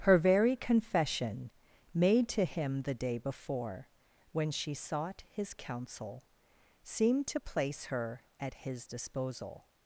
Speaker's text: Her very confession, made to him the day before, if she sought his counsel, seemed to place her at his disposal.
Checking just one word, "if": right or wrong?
wrong